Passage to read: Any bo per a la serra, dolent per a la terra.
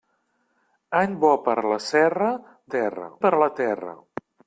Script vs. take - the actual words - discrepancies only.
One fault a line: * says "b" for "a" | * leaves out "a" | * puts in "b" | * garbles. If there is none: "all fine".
* says "terra" for "dolent"